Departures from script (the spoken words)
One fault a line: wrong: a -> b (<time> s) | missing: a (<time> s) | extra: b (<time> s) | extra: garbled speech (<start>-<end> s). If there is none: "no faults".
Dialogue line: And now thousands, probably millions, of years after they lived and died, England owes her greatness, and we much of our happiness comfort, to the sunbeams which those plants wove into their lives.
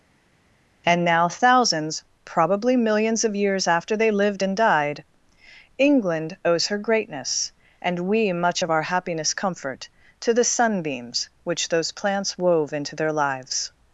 no faults